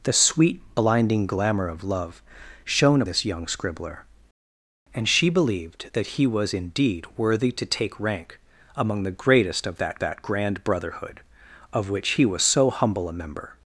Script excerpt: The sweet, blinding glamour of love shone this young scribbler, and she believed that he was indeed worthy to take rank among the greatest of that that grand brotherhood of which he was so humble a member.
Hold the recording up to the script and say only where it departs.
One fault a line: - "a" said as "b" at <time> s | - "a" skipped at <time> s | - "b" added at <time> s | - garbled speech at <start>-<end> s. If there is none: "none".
none